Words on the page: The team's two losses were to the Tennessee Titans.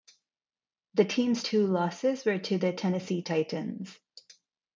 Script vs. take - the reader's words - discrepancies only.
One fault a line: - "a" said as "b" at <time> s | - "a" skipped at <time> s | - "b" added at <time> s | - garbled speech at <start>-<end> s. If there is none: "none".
none